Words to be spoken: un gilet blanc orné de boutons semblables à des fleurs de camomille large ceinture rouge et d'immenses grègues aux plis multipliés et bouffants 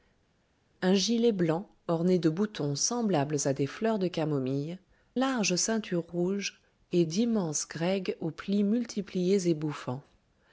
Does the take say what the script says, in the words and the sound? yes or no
yes